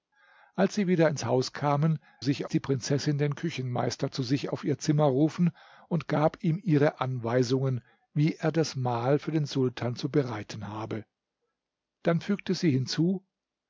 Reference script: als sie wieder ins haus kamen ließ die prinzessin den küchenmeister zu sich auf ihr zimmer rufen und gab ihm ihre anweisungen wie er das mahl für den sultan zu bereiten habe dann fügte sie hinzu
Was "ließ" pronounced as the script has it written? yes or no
no